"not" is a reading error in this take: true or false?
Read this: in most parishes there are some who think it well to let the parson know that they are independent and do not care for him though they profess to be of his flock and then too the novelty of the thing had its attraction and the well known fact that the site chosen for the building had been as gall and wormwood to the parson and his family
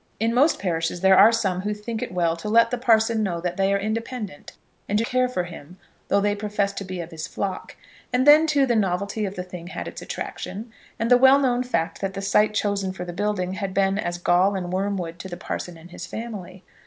true